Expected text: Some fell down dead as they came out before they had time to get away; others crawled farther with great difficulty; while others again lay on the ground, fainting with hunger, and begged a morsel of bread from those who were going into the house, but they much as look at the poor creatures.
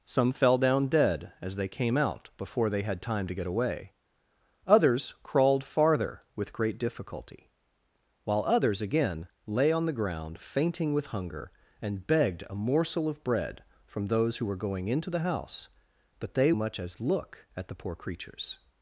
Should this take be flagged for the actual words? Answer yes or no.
no